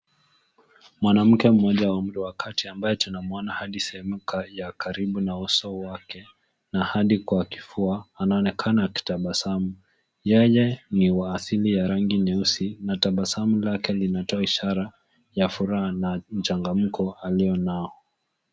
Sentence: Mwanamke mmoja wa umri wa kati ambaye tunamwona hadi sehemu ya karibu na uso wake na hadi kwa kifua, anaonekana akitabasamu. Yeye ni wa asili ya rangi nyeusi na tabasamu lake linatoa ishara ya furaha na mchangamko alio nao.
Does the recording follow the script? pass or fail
pass